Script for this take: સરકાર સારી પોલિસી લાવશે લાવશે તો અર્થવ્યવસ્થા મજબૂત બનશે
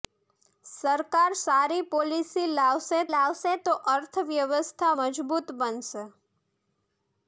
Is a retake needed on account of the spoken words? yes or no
no